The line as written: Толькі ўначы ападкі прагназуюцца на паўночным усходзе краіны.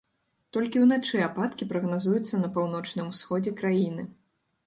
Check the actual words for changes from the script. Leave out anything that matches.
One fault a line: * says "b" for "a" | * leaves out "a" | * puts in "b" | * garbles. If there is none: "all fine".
all fine